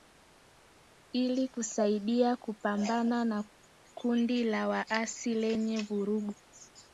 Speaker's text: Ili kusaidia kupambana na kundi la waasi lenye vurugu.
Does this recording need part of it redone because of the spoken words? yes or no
no